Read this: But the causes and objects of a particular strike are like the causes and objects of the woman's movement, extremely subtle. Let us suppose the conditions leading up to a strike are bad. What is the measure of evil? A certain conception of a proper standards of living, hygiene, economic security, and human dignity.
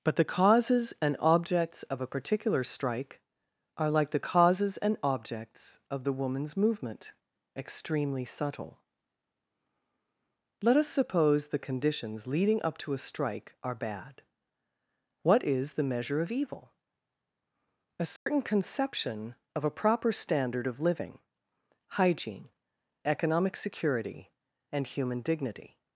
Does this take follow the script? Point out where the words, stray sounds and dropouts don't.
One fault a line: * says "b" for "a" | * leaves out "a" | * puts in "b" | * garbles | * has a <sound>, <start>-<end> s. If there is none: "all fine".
* has a dropout, 18.2-18.3 s
* says "standard" for "standards"